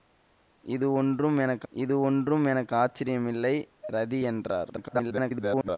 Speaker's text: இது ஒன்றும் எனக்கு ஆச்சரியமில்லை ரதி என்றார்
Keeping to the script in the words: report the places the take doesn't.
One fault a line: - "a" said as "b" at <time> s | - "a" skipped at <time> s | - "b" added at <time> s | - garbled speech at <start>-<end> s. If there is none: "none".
- "இது ஒன்றும் எனக்கு" added at 1.7 s
- garbled speech at 4.7-5.8 s